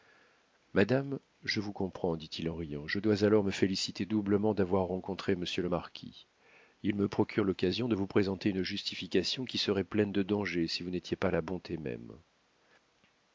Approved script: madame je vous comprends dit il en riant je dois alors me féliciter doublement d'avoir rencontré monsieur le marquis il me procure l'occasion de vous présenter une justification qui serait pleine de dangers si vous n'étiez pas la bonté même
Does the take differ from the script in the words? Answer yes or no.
no